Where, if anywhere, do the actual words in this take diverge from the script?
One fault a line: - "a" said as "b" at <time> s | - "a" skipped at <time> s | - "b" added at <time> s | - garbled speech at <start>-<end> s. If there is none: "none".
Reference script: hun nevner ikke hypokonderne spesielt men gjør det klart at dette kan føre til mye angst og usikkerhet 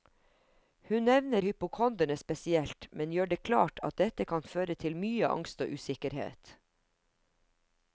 - "ikke" skipped at 1.4 s